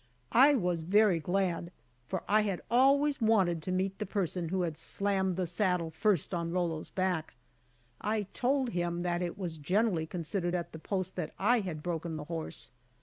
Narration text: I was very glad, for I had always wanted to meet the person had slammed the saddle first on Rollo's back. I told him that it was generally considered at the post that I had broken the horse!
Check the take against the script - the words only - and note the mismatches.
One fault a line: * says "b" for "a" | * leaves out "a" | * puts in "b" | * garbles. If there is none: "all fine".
* puts in "who"